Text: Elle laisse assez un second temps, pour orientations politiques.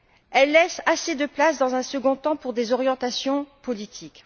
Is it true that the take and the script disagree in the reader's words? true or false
true